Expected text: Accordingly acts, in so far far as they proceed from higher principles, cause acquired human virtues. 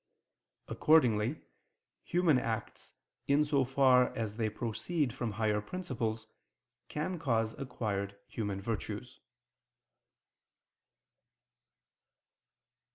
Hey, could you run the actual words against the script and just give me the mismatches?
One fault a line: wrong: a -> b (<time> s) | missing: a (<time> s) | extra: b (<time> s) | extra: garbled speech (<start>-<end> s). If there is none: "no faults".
extra: human (2.0 s)
missing: far (4.1 s)
extra: can (6.9 s)